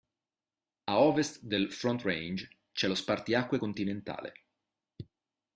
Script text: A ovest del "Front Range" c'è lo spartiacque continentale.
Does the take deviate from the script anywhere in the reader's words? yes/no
no